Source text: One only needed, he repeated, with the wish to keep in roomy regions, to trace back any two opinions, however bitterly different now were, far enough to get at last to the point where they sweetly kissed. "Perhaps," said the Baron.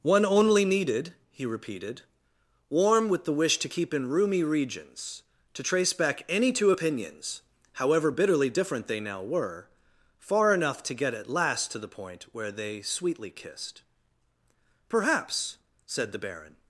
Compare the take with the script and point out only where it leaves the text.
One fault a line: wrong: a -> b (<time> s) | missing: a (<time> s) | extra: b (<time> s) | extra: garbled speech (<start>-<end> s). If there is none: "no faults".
extra: warm (2.7 s)
extra: they (8.9 s)